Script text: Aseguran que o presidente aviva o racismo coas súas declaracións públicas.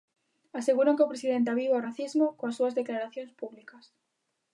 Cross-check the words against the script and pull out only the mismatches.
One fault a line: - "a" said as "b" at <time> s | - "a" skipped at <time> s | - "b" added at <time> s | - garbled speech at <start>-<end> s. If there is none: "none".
none